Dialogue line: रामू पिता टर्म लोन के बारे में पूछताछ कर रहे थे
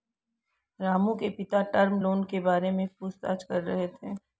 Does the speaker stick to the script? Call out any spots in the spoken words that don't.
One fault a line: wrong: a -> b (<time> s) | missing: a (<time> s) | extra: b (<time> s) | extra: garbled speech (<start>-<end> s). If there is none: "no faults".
extra: के (1.1 s)